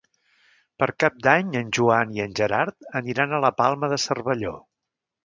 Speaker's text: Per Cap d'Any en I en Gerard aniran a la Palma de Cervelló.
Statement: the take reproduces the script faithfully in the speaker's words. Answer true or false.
false